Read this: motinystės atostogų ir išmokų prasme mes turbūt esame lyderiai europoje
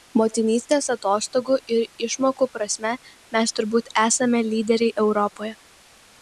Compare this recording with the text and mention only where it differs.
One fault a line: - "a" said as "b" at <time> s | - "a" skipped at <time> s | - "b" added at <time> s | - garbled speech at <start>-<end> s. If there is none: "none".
none